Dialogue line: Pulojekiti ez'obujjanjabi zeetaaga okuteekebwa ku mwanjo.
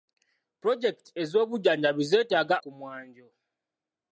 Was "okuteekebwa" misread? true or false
true